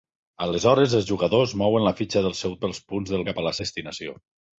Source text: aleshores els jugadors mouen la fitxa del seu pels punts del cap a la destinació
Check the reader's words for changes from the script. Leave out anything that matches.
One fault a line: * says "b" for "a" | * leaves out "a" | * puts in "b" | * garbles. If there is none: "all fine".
all fine